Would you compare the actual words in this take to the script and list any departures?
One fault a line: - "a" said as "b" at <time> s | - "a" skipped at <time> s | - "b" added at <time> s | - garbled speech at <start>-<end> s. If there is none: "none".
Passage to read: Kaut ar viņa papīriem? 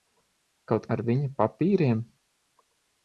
none